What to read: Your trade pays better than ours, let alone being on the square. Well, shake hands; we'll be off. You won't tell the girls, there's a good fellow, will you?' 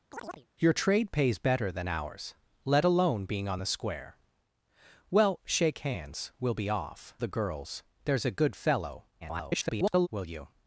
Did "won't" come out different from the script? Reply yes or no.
yes